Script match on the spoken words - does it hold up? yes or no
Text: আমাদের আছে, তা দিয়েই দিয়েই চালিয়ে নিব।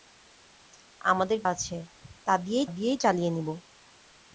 yes